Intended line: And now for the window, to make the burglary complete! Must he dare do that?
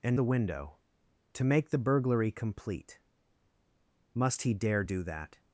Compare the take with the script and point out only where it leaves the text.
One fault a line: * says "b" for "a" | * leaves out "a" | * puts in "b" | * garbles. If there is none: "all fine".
* leaves out "now for"